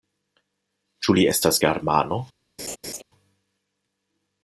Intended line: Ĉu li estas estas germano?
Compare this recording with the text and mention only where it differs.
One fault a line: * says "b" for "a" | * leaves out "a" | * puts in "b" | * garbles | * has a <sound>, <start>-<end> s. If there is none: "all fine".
* leaves out "estas"
* has a laugh, 2.6-3.0 s